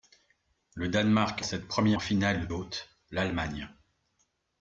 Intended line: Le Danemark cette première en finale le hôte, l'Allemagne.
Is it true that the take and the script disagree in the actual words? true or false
false